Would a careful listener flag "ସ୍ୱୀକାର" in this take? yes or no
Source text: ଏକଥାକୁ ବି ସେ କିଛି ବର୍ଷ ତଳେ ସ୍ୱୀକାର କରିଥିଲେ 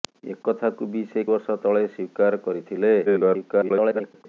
no